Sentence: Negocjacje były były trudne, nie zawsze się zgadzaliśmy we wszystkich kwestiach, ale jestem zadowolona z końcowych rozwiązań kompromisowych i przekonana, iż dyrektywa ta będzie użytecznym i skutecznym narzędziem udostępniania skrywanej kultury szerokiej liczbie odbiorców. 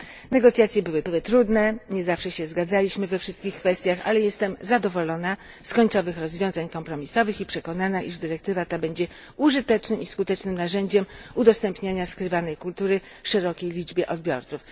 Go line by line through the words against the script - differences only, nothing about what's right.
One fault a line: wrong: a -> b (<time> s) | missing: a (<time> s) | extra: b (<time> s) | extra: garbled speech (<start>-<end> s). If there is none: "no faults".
no faults